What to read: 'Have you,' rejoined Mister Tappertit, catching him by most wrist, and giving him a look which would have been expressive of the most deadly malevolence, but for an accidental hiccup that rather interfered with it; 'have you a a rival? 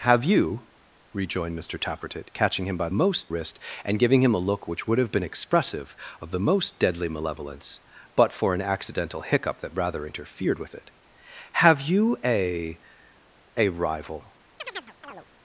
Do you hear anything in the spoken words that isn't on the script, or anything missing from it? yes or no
no